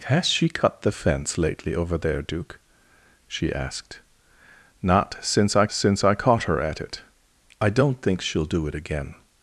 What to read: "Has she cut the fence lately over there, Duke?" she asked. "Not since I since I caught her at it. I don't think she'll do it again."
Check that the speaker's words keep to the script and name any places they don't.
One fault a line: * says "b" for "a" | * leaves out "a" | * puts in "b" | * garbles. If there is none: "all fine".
all fine